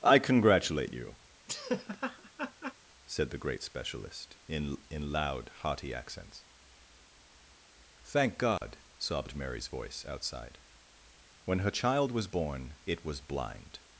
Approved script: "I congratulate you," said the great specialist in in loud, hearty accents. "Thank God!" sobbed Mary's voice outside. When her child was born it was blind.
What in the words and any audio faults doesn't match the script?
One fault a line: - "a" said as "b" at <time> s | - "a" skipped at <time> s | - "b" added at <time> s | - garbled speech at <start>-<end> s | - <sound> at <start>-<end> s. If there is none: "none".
- laugh at 1.5-2.7 s
- dropout at 8.6-8.6 s